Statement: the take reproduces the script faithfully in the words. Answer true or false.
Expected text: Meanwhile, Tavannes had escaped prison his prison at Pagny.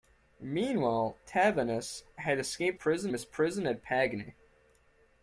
true